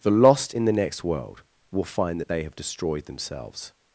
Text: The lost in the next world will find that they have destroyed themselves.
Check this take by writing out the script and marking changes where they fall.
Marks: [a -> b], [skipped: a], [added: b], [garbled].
The lost in the next world will find that they have destroyed themselves.